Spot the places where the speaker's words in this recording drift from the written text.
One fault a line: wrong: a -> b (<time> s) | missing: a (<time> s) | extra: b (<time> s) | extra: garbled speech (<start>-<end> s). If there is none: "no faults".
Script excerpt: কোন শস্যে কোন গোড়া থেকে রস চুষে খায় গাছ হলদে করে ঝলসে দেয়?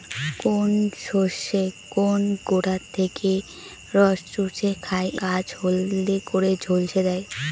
no faults